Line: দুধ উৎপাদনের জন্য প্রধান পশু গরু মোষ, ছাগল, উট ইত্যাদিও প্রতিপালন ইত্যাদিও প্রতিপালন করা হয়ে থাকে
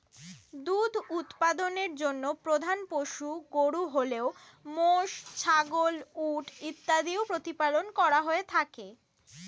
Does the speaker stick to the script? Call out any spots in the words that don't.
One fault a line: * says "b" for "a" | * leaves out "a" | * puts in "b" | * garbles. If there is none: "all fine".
* puts in "হলেও"
* leaves out "ইত্যাদিও প্রতিপালন"